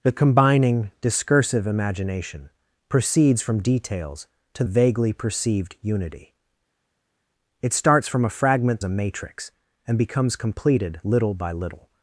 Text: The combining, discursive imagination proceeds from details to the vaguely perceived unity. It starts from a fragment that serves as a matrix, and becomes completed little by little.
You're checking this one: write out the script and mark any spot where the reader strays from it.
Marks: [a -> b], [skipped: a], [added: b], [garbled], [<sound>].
The combining, discursive imagination proceeds from details to [skipped: the] vaguely perceived unity. It starts from a fragment [skipped: that serves as] a matrix, and becomes completed little by little.